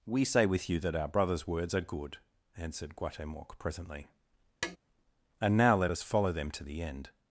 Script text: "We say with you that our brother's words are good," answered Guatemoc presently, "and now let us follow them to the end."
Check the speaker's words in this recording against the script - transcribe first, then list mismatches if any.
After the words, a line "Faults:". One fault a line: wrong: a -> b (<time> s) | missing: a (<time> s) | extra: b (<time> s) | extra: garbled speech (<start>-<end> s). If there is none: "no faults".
"We say with you that our brother's words are good," answered Guatemoc presently, "and now let us follow them to the end."
Faults:
no faults